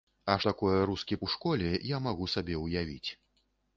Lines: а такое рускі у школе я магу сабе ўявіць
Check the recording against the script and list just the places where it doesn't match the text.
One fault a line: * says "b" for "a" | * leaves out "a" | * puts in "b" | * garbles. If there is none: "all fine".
all fine